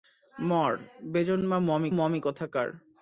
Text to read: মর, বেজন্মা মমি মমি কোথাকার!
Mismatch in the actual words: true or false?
false